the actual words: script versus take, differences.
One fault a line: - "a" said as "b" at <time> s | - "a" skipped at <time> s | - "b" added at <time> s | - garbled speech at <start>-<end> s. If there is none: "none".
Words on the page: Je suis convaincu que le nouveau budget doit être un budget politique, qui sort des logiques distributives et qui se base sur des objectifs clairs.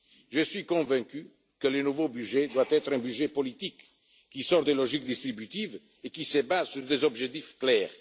none